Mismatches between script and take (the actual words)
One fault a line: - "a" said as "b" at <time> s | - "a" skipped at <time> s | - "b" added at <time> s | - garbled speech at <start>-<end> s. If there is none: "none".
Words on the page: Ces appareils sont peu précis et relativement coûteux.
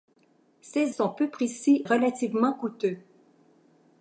- "appareils" skipped at 0.9 s
- "et" skipped at 1.8 s